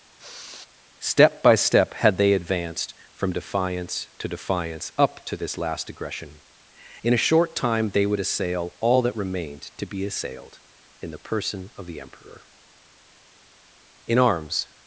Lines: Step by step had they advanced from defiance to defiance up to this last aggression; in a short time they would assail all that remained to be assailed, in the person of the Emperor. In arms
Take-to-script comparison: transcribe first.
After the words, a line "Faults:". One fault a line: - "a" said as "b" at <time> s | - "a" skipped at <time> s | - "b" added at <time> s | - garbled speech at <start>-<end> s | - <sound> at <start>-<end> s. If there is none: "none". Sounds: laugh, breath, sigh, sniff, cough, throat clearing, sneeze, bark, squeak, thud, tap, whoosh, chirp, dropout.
Step by step had they advanced from defiance to defiance up to this last aggression; in a short time they would assail all that remained to be assailed, in the person of the Emperor. In arms
Faults:
- sigh at 0.2-0.7 s